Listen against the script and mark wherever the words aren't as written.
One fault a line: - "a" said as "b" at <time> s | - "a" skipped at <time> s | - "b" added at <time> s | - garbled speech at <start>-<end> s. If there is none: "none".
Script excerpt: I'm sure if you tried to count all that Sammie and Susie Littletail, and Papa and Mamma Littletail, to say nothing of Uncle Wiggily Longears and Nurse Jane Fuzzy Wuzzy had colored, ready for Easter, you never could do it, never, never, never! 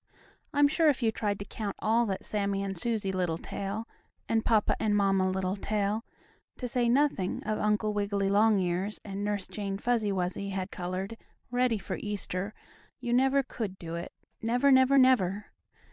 none